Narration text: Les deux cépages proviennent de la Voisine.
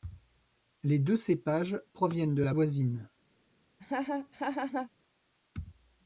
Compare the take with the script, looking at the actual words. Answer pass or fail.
pass